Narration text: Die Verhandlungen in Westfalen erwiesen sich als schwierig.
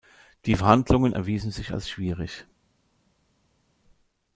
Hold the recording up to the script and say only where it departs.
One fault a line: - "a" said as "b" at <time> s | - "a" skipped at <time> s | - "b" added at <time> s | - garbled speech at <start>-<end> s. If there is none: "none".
- "in Westfalen" skipped at 1.1 s